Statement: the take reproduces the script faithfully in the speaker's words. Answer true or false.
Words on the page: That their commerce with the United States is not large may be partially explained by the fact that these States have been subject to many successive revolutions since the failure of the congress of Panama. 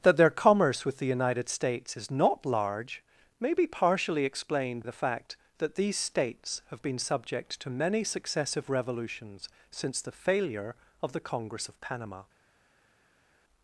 false